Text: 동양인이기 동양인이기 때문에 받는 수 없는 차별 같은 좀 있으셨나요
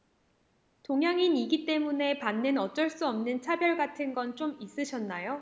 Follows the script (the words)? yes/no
no